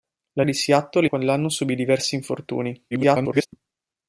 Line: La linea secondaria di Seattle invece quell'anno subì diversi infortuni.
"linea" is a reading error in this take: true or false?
true